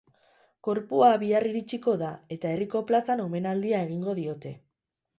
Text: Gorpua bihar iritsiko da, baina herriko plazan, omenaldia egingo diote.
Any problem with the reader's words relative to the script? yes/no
yes